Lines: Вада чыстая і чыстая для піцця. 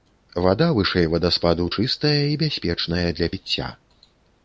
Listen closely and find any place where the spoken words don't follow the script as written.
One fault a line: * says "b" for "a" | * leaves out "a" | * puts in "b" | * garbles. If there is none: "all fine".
* puts in "вышэй вадаспаду"
* says "бяспечная" for "чыстая"